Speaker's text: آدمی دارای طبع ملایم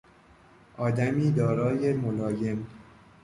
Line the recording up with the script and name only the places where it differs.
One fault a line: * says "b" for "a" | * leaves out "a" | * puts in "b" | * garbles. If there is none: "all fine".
* leaves out "طبع"